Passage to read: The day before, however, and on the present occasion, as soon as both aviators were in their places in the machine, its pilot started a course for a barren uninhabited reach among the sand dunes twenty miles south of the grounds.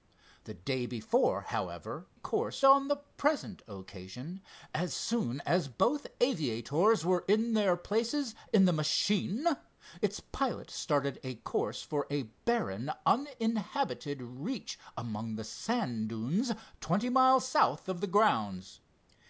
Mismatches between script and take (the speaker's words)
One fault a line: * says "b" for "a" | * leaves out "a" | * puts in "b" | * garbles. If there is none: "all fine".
* says "course" for "and"